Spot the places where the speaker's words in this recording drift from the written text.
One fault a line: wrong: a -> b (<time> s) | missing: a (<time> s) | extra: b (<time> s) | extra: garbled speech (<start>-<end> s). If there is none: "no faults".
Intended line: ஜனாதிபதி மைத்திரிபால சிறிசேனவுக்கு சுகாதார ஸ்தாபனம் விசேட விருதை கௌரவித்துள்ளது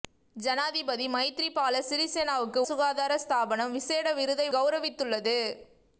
no faults